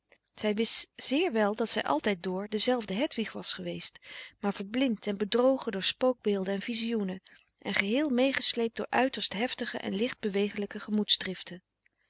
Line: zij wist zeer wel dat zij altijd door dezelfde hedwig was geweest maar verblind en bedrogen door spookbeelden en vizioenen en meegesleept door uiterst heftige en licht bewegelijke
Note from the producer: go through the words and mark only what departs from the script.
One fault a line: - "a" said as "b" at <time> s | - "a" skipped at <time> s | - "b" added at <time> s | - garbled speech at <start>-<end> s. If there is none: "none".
- "geheel" added at 7.7 s